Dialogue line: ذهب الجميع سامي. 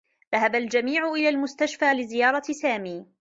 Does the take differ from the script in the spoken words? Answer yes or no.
yes